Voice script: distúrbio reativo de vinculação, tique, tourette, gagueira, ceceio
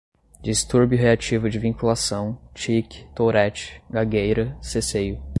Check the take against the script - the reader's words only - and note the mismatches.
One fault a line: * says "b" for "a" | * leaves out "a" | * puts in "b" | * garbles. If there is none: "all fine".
all fine